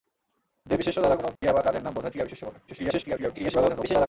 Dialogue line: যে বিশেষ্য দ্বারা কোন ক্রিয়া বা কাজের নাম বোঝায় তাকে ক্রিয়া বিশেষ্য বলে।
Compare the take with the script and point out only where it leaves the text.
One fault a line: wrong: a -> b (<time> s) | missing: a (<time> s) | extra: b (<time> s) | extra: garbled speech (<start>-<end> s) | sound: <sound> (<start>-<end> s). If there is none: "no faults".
sound: dropout (1.4-1.4 s)
missing: তাকে (2.1 s)
extra: garbled speech (2.7-4.1 s)